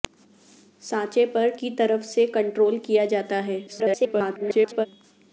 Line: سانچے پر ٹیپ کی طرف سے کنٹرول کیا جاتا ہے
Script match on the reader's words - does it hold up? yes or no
no